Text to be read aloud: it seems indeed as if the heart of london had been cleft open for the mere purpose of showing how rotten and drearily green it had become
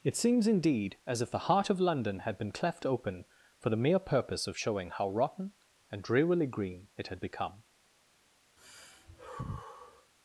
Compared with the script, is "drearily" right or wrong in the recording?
right